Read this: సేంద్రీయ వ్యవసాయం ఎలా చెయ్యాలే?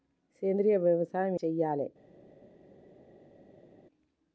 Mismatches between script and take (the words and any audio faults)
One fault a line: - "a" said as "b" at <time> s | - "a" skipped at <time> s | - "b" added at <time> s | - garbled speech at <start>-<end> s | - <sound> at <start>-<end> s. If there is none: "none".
- "ఎలా" skipped at 1.4 s